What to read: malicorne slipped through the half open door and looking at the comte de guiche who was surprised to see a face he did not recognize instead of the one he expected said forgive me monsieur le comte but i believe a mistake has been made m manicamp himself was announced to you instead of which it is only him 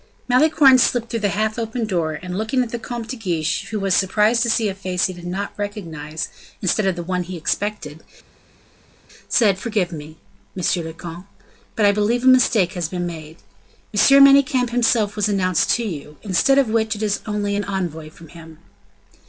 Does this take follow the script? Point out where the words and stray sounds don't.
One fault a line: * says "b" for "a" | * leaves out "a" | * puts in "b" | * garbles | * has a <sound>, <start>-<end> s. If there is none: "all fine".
* puts in "an envoy from"